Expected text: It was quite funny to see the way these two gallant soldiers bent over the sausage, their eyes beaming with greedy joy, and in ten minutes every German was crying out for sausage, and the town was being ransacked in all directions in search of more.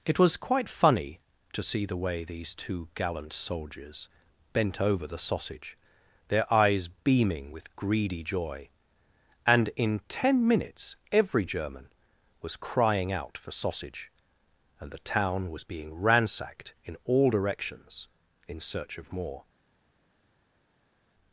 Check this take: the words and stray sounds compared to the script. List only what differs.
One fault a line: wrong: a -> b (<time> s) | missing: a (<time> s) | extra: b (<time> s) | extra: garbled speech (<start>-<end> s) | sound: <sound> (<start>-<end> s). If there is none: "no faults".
no faults